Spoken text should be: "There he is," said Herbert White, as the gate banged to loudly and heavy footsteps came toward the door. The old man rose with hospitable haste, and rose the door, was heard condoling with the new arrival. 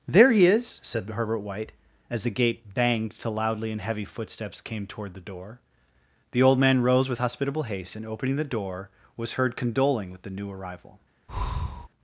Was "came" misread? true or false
false